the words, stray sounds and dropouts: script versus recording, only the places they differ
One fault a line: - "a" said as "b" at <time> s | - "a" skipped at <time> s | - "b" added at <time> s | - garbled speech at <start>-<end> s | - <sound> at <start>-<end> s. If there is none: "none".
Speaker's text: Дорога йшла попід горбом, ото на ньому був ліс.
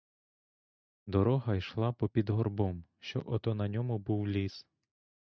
- "що" added at 3.0 s